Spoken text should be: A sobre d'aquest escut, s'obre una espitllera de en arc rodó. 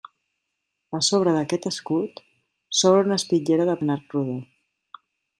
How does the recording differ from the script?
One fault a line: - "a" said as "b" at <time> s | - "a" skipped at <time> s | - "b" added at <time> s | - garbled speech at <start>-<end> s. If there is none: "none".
none